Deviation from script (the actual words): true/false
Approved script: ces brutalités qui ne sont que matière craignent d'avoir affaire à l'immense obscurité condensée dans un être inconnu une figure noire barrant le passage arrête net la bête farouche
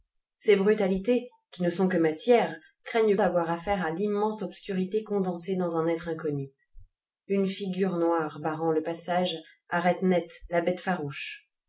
false